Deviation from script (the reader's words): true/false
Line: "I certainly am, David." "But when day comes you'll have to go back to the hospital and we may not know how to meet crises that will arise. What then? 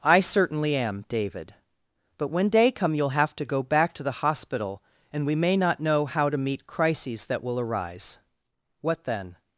true